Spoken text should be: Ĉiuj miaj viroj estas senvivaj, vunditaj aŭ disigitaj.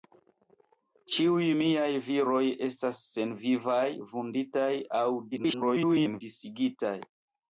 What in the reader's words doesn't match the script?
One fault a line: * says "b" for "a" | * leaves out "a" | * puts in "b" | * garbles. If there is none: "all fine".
* garbles